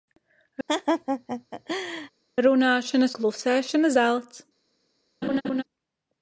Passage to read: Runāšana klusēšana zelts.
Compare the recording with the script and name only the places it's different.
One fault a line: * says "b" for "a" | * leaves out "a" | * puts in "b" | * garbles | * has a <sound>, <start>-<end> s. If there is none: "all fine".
* has a laugh, 0.7-2.1 s
* has a laugh, 5.2-5.6 s